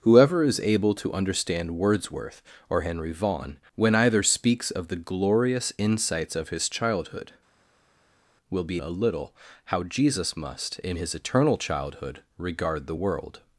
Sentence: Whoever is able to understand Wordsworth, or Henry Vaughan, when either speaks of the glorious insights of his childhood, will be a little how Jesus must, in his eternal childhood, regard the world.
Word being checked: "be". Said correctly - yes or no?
yes